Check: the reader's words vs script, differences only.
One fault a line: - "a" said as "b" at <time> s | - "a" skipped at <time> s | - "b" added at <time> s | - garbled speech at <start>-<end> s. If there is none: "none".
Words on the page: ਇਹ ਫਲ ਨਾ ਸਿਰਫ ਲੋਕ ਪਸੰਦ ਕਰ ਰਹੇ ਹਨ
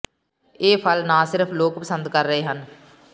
none